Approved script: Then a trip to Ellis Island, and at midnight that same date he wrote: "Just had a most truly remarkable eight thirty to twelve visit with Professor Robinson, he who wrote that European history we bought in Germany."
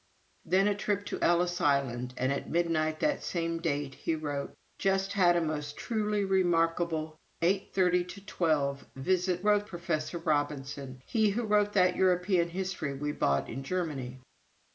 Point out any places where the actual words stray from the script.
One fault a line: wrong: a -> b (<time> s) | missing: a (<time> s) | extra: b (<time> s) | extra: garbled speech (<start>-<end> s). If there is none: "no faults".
wrong: with -> wrote (9.4 s)